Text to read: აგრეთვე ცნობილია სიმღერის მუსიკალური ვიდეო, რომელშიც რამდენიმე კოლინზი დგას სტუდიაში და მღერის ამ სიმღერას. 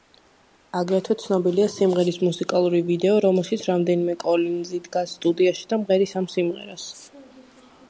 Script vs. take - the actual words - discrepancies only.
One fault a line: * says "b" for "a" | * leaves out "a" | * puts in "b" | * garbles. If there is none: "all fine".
all fine